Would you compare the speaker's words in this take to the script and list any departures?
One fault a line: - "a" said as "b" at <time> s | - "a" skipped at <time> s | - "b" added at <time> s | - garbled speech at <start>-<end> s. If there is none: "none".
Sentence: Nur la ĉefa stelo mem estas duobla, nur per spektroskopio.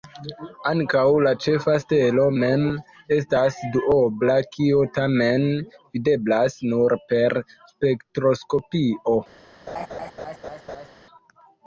- "Nur" said as "Ankaŭ" at 0.7 s
- "kio tamen videblas" added at 4.5 s